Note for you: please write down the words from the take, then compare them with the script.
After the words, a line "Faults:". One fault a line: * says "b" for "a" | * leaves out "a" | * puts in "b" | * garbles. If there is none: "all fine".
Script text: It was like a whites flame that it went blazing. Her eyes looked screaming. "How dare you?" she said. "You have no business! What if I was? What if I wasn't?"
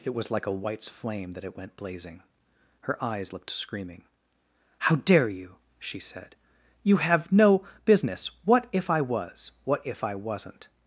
It was like a whites flame that it went blazing. Her eyes looked screaming. "How dare you?" she said. "You have no business! What if I was? What if I wasn't?"
Faults:
all fine